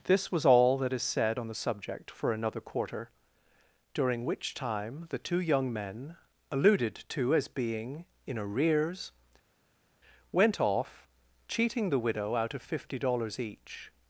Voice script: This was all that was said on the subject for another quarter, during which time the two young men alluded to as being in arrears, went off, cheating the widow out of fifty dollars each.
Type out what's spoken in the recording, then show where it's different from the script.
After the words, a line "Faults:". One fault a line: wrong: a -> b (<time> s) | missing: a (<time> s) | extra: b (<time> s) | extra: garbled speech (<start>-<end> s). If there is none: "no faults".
This was all that is said on the subject for another quarter, during which time the two young men alluded to as being in arrears, went off, cheating the widow out of fifty dollars each.
Faults:
wrong: was -> is (0.9 s)